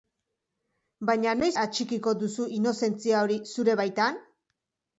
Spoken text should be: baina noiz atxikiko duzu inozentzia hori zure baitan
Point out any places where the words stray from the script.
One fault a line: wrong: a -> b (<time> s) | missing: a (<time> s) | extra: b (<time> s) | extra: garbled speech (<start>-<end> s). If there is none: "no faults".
no faults